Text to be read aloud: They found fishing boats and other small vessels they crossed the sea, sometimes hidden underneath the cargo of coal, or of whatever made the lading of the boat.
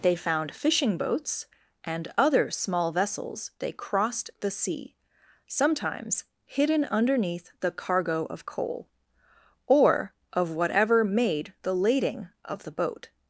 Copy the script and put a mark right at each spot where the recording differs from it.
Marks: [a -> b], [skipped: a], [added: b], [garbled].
They found fishing boats and other small vessels they crossed the sea, sometimes hidden underneath the cargo of coal, or of whatever made the lading of the boat.